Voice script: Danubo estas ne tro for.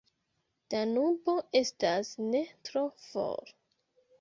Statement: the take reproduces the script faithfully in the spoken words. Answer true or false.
true